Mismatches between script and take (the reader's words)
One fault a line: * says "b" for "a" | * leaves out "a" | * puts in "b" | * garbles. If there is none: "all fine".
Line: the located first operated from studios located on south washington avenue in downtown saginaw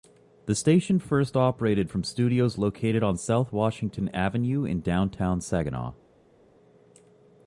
* says "station" for "located"